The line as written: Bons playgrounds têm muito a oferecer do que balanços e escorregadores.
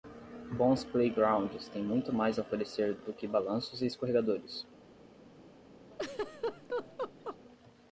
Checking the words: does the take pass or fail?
fail